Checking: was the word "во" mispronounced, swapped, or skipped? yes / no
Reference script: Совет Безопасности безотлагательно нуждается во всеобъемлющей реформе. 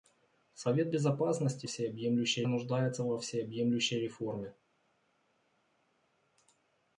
no